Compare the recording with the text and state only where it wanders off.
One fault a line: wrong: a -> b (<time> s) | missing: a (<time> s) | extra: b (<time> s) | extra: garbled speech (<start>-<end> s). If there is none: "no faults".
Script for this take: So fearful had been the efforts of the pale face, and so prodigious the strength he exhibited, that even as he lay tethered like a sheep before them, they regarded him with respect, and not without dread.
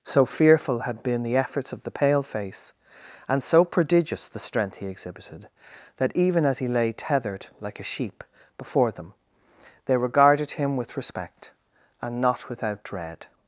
no faults